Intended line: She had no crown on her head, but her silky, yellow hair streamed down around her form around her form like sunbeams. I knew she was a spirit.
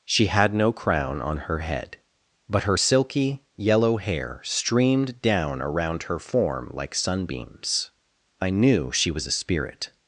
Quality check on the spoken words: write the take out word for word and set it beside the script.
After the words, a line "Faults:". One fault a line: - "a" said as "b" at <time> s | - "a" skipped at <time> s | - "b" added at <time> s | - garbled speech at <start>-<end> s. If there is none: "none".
She had no crown on her head, but her silky, yellow hair streamed down around her form like sunbeams. I knew she was a spirit.
Faults:
- "around her form" skipped at 6.7 s